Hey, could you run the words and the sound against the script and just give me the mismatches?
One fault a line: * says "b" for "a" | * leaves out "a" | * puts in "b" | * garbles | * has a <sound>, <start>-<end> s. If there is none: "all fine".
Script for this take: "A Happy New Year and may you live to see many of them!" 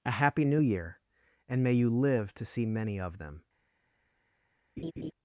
* has a laugh, 4.8-5.1 s